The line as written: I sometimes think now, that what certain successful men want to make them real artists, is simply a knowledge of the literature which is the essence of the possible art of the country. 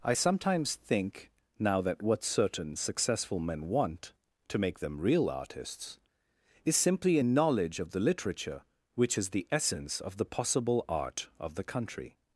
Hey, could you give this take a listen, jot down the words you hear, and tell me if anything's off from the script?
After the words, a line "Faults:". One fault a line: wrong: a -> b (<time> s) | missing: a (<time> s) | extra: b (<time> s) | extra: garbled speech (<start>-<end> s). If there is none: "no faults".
I sometimes think now, that what certain successful men want to make them real artists, is simply a knowledge of the literature which is the essence of the possible art of the country.
Faults:
no faults